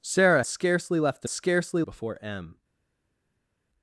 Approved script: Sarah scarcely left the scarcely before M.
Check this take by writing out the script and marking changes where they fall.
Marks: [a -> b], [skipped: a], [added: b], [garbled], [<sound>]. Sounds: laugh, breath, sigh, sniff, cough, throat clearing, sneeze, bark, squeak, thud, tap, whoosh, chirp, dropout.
Sarah scarcely left the scarcely before M.